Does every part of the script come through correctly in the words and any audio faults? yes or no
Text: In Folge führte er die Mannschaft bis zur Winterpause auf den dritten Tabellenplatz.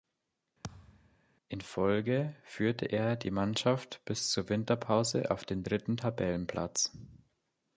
no